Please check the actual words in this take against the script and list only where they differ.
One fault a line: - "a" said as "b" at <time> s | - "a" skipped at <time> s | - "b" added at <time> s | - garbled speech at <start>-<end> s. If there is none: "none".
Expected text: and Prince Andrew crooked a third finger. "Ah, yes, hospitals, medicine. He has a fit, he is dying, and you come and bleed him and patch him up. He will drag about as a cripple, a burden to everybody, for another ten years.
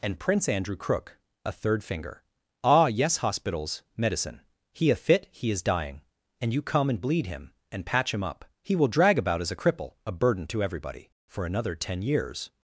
- "crooked" said as "crook" at 0.8 s
- "has" skipped at 4.9 s